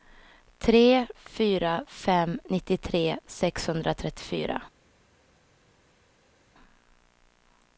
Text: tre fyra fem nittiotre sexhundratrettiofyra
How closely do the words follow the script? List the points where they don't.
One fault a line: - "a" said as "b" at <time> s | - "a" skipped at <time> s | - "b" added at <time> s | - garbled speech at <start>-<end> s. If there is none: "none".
none